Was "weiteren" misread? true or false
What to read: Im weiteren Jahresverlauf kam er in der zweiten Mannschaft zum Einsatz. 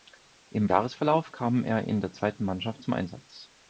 true